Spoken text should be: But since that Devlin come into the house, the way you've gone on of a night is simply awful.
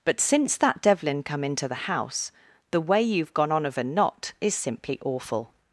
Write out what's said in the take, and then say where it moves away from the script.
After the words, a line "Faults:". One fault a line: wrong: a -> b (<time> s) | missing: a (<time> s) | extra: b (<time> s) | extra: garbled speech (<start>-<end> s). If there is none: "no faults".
But since that Devlin come into the house, the way you've gone on of a knot is simply awful.
Faults:
wrong: night -> knot (3.8 s)